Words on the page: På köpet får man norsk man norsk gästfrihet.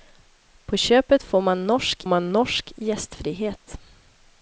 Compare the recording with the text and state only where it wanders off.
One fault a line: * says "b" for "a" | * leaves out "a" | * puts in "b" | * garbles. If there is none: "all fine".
all fine